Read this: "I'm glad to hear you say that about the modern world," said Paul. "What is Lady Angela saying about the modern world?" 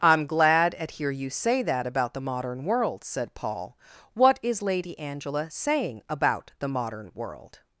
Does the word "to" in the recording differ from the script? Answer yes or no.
yes